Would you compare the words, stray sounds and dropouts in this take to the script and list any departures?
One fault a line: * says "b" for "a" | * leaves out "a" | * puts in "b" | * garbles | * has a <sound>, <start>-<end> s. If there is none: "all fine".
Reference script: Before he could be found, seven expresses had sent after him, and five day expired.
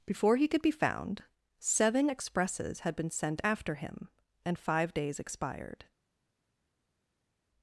* puts in "been"
* says "days" for "day"